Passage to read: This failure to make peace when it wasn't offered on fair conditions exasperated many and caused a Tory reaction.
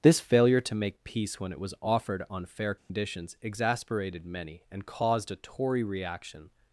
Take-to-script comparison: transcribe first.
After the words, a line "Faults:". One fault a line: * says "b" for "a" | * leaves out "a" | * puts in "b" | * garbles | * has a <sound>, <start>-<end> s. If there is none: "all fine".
This failure to make peace when it was offered on fair conditions exasperated many and caused a Tory reaction.
Faults:
* says "was" for "wasn't"
* has a dropout, 2.8-2.9 s